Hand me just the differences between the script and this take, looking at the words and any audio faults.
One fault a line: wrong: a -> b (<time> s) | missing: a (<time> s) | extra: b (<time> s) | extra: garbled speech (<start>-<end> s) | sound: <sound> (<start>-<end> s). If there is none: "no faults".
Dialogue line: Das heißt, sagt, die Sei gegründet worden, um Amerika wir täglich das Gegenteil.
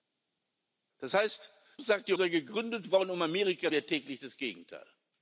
no faults